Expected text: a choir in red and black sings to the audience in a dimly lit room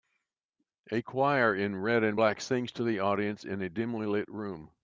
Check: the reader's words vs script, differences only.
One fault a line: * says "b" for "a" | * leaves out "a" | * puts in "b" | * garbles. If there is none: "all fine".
all fine